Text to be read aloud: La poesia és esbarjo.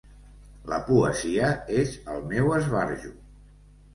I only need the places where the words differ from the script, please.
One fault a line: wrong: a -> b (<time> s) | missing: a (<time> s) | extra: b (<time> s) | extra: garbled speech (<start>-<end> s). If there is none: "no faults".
extra: el meu (2.1 s)